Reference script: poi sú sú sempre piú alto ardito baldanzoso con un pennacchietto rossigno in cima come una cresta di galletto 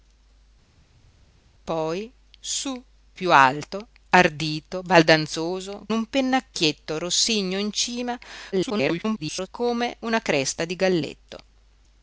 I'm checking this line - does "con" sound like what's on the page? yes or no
no